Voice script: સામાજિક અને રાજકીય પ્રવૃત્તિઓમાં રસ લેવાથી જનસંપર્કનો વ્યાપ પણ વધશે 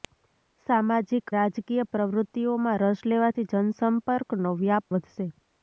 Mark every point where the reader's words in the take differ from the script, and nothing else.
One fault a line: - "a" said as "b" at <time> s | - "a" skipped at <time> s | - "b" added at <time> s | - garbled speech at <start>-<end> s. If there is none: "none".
- "અને" skipped at 1.3 s
- "પણ" skipped at 4.9 s